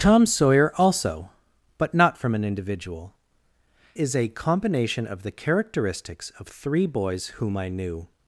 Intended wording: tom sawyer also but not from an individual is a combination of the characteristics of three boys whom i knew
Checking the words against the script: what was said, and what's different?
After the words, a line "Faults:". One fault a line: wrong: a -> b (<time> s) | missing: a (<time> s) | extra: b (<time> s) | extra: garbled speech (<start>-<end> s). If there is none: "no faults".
tom sawyer also but not from an individual is a combination of the characteristics of three boys whom i knew
Faults:
no faults